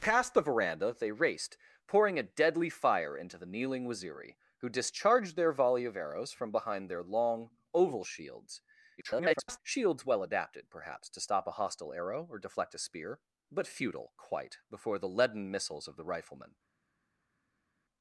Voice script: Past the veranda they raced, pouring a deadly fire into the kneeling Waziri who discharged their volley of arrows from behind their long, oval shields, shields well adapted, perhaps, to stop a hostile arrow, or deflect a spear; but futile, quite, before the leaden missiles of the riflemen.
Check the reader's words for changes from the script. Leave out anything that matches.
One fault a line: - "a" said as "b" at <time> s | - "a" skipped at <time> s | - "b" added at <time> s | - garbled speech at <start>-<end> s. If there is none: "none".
- garbled speech at 9.0-9.6 s